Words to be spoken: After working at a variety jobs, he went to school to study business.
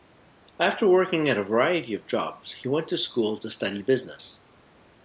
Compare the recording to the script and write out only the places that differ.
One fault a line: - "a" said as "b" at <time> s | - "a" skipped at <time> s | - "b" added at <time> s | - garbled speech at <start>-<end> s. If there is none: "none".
- "of" added at 1.9 s